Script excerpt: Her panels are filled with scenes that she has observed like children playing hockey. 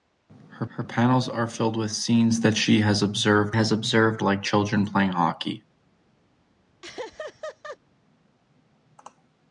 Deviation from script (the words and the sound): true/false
true